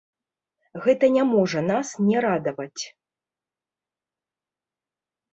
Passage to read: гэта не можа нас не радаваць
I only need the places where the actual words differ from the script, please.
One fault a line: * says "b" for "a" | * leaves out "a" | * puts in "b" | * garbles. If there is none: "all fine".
all fine